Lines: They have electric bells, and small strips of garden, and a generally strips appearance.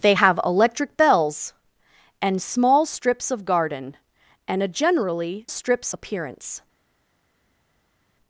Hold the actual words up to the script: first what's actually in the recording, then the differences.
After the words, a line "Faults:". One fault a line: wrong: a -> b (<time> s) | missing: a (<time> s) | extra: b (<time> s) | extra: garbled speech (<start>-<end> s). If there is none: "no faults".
They have electric bells, and small strips of garden, and a generally strips appearance.
Faults:
no faults